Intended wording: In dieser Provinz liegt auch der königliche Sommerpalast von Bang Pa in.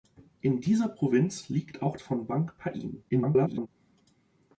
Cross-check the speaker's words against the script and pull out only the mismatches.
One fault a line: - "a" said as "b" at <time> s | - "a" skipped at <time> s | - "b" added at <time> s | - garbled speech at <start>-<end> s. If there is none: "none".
- "der königliche Sommerpalast" skipped at 1.9 s
- garbled speech at 3.1-3.7 s